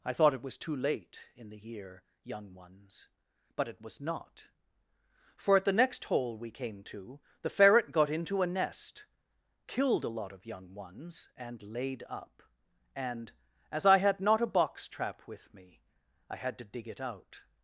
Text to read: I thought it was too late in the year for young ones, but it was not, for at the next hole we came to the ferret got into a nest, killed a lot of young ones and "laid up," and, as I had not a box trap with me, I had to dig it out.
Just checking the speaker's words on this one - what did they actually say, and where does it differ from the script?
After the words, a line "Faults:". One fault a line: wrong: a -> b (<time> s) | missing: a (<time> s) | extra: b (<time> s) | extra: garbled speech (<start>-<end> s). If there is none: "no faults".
I thought it was too late in the year young ones, but it was not, for at the next hole we came to the ferret got into a nest, killed a lot of young ones and "laid up," and, as I had not a box trap with me, I had to dig it out.
Faults:
missing: for (2.0 s)